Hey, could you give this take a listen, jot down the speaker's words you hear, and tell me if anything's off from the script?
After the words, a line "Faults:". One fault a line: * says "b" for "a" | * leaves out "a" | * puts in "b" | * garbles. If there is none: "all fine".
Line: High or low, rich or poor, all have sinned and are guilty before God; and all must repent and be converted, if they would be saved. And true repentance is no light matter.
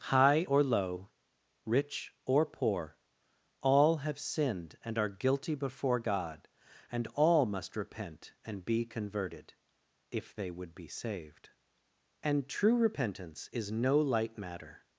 High or low, rich or poor, all have sinned and are guilty before God; and all must repent and be converted, if they would be saved. And true repentance is no light matter.
Faults:
all fine